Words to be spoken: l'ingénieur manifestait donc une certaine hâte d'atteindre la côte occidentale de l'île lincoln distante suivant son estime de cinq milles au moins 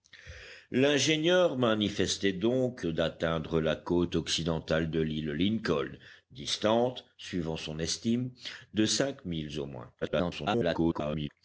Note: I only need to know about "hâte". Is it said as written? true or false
false